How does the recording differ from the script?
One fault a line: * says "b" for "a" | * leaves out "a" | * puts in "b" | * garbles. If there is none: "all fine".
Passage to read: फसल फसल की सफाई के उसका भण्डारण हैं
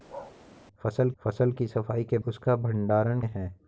all fine